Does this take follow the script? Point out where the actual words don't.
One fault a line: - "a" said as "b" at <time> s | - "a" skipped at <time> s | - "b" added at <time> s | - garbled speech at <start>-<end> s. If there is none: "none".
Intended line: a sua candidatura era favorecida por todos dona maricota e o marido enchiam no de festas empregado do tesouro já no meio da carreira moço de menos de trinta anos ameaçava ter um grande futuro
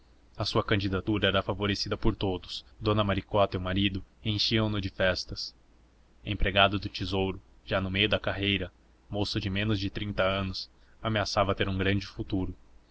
none